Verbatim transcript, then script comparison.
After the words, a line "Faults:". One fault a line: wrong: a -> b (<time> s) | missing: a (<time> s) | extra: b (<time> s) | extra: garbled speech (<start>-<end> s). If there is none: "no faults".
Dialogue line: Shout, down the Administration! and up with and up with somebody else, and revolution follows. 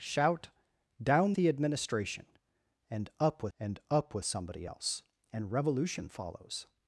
Shout, down the Administration! and up with and up with somebody else, and revolution follows.
Faults:
no faults